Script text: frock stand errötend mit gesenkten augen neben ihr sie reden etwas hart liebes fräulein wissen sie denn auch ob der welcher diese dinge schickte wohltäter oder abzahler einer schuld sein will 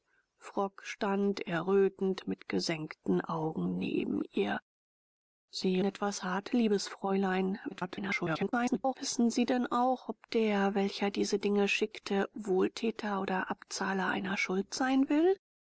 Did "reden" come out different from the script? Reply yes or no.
yes